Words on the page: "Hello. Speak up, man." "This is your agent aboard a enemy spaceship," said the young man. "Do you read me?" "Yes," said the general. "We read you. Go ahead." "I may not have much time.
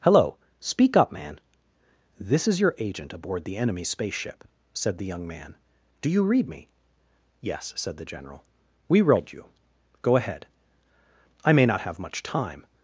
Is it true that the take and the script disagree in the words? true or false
true